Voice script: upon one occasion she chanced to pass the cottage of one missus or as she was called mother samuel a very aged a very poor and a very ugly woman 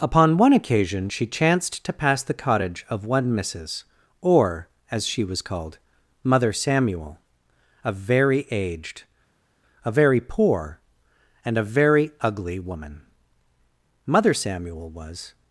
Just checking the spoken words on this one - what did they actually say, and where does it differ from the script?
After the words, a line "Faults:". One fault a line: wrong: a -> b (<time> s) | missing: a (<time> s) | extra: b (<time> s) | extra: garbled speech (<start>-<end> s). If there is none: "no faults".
upon one occasion she chanced to pass the cottage of one missus or as she was called mother samuel a very aged a very poor and a very ugly woman mother samuel was
Faults:
extra: mother samuel was (14.0 s)